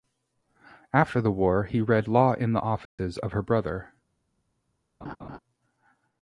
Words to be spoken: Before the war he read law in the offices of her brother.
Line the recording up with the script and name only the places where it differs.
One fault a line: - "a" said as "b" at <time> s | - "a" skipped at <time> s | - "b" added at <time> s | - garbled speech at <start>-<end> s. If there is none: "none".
- "Before" said as "After" at 0.9 s